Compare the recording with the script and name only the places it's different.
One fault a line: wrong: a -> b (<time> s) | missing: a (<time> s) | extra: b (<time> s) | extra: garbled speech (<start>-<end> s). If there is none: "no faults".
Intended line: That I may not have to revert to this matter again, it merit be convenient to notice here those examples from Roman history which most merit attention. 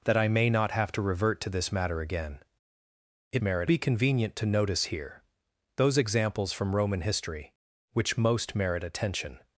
no faults